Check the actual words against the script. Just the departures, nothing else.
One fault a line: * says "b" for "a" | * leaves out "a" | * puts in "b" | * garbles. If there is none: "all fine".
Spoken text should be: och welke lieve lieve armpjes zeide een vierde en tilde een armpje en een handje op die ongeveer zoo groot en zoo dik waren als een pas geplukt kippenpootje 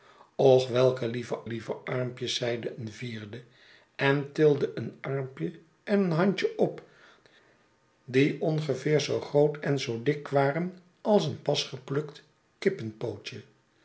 all fine